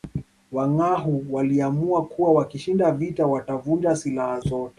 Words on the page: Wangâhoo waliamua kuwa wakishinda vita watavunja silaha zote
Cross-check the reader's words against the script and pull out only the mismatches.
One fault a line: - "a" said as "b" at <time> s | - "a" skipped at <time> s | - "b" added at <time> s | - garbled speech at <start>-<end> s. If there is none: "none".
none